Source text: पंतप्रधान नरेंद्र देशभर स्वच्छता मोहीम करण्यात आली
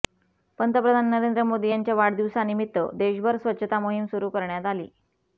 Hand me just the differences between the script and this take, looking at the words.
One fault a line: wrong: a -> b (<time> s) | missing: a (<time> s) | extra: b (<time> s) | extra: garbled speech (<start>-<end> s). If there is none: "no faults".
extra: मोदी यांच्या वाढदिवसानिमित्त (1.4 s)
extra: सुरू (4.1 s)